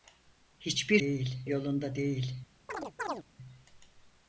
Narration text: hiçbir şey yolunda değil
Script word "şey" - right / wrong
wrong